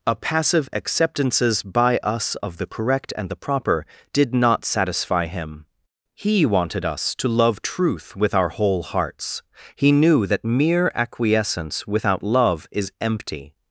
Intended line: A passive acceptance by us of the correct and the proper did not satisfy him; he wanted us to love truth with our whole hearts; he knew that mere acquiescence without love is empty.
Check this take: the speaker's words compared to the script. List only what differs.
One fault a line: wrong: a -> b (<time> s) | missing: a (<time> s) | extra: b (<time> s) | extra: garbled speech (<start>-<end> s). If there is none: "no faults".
wrong: acceptance -> acceptances (0.7 s)